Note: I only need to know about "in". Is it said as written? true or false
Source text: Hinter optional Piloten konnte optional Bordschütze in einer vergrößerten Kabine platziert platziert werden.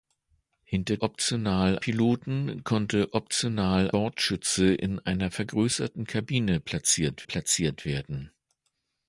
true